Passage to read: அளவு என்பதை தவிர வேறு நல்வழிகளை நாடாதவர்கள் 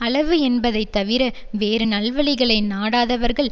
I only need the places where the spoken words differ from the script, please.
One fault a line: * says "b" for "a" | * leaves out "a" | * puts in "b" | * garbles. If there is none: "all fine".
all fine